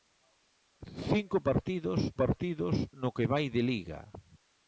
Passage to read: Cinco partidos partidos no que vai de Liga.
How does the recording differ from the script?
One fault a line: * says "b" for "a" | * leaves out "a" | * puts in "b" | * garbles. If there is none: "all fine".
all fine